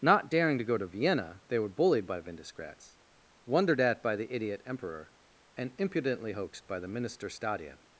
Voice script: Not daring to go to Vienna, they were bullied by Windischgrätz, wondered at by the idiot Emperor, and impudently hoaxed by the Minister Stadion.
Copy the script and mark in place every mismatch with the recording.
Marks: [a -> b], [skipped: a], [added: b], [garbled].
Not daring to go to Vienna, they were bullied by Windischgrätz, wondered at by the idiot Emperor, and impudently hoaxed by the Minister Stadion.